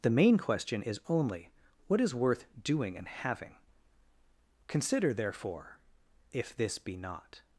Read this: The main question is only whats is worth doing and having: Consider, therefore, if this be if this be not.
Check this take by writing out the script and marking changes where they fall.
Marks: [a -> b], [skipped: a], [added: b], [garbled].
The main question is only [whats -> what] is worth doing and having: Consider, therefore, if this be [skipped: if this be] not.